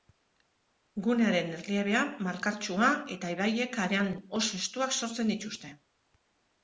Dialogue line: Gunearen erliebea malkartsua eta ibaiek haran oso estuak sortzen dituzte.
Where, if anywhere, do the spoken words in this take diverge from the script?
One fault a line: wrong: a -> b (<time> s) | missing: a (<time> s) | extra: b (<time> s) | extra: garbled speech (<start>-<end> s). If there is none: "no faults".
no faults